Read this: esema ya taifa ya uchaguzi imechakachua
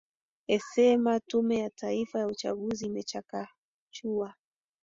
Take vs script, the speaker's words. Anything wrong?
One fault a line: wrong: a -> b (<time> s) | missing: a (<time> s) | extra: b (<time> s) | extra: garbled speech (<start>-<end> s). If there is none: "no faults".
extra: tume (1.2 s)